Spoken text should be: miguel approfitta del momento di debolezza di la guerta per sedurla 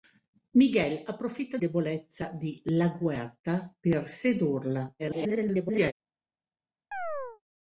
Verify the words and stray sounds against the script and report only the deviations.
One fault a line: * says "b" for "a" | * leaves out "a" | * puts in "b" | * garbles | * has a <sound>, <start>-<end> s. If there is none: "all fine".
* leaves out "del momento di"
* garbles
* has a chirp, 6.9-7.4 s